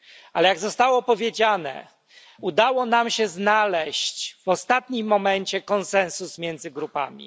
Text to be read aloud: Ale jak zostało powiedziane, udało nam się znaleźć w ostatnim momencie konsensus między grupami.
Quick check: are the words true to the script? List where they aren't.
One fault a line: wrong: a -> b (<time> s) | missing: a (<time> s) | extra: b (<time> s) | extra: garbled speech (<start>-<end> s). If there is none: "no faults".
no faults